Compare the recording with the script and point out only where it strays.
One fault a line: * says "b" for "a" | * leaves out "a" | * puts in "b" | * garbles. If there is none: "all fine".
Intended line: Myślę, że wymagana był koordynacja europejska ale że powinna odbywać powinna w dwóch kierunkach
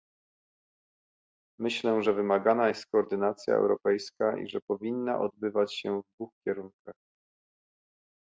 * says "jest" for "był"
* says "i" for "ale"
* says "się" for "powinna"